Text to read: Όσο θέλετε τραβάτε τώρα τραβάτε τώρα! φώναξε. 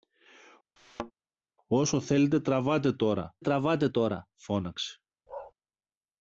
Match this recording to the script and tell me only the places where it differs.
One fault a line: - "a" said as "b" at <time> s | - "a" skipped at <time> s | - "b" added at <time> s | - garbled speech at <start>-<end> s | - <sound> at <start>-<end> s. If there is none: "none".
- thud at 0.8-1.1 s
- bark at 5.3-5.5 s